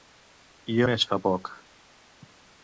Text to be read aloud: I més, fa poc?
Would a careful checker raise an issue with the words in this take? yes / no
no